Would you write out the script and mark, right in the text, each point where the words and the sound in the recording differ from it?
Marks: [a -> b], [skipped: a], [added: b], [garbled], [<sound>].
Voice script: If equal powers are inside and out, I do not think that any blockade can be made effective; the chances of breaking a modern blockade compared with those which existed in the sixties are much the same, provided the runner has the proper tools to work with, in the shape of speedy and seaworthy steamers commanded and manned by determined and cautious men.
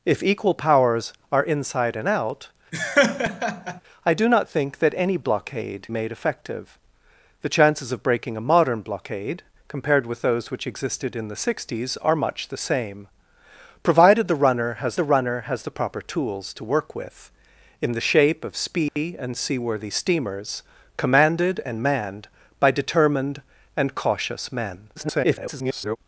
If equal powers are inside and out, [laugh] I do not think that any blockade [skipped: can be] made effective; the chances of breaking a modern blockade compared with those which existed in the sixties are much the same, provided the runner has the [added: runner has the] proper tools to work with, in the shape of speedy [dropout] and seaworthy steamers commanded and manned by determined and cautious men. [garbled]